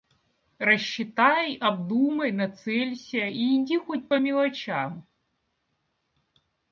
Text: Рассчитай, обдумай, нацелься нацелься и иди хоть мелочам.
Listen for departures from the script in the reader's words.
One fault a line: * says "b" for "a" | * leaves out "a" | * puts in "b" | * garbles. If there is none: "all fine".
* leaves out "нацелься"
* puts in "по"